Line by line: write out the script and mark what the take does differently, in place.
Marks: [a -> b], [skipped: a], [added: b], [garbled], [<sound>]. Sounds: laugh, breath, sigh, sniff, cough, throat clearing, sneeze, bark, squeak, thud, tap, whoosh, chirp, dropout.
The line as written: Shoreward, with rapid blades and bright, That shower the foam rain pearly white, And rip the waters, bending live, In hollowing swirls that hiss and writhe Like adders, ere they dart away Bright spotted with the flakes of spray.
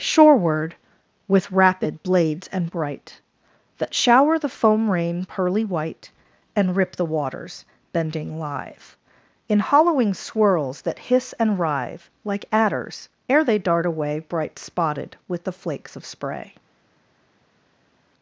Shoreward, with rapid blades and bright, That shower the foam rain pearly white, And rip the waters, bending live, In hollowing swirls that hiss and writhe Like adders, ere they dart away Bright spotted with the flakes of spray.